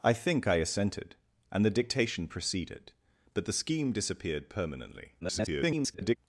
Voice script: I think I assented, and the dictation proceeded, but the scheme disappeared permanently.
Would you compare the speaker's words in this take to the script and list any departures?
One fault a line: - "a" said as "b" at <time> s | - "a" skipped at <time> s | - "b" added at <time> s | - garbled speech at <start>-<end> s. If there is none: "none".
- garbled speech at 5.2-6.2 s